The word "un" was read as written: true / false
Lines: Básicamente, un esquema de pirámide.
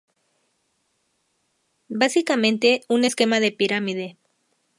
true